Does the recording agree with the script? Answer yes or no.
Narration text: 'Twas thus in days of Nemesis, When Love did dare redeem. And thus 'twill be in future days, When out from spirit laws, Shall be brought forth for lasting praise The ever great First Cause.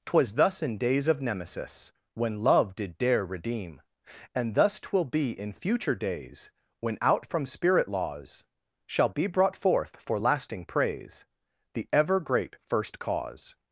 yes